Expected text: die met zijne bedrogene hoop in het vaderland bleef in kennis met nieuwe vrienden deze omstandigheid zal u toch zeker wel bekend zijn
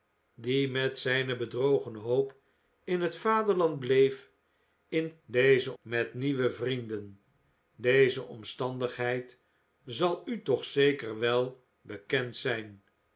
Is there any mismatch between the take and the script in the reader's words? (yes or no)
yes